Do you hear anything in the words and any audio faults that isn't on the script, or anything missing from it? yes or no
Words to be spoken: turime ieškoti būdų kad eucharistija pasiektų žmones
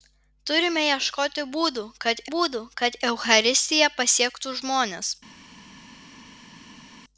yes